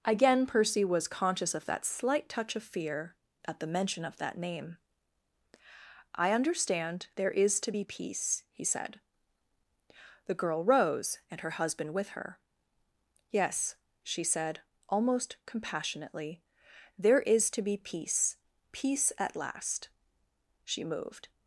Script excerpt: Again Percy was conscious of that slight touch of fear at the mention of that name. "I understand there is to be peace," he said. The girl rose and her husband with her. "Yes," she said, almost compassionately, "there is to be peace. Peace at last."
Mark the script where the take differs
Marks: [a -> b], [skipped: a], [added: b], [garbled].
Again Percy was conscious of that slight touch of fear at the mention of that name. "I understand there is to be peace," he said. The girl rose and her husband with her. "Yes," she said, almost compassionately, "there is to be peace. Peace at last." [added: She moved]